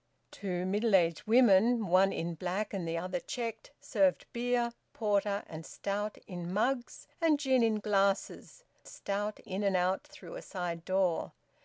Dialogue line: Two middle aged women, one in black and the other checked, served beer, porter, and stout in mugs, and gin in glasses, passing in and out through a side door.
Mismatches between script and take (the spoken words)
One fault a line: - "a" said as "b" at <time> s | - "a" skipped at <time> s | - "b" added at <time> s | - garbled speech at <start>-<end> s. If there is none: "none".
- "passing" said as "stout" at 8.9 s